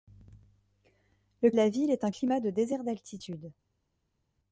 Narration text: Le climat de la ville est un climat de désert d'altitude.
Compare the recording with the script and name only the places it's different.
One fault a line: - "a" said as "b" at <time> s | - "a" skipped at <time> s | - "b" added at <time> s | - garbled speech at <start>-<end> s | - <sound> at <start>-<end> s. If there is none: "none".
- "climat" skipped at 1.5 s